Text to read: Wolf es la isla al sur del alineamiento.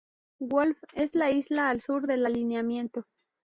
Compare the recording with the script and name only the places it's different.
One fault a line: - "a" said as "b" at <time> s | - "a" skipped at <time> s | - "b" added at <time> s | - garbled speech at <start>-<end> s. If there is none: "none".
none